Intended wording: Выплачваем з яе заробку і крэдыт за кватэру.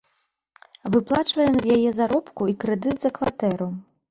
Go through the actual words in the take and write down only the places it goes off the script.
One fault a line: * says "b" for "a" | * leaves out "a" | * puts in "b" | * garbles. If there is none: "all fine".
all fine